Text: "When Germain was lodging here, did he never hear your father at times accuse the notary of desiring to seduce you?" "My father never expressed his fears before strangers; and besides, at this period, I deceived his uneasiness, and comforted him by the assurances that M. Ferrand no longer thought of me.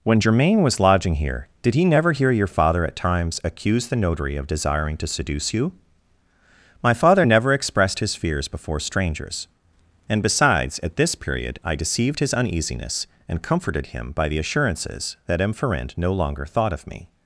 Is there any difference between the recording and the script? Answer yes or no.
no